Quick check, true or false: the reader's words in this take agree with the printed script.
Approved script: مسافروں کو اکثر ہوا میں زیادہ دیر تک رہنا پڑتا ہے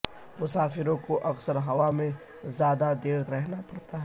false